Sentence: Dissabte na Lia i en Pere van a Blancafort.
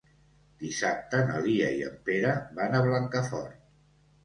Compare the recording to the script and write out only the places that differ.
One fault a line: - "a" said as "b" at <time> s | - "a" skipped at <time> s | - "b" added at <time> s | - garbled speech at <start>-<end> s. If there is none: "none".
none